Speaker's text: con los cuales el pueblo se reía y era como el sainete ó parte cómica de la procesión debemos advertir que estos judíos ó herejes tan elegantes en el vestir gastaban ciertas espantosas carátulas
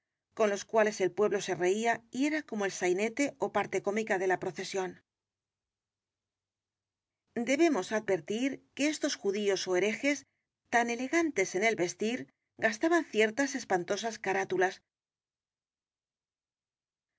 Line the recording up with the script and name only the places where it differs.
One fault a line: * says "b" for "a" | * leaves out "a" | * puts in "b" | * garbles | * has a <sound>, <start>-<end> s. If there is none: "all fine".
all fine